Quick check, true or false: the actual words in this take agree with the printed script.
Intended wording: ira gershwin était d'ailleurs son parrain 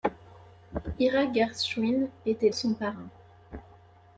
false